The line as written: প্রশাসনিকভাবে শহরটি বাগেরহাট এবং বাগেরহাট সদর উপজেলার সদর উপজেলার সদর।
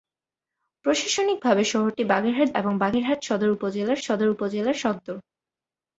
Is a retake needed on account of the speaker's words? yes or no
no